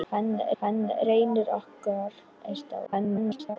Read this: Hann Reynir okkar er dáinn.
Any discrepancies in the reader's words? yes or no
yes